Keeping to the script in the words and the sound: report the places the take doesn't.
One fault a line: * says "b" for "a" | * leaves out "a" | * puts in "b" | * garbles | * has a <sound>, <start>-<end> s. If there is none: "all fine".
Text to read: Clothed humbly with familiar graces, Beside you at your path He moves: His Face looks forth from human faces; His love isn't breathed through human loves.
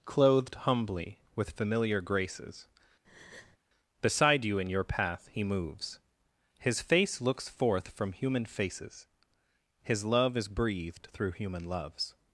* has a breath, 3.0-3.6 s
* says "in" for "at"
* says "is" for "isn't"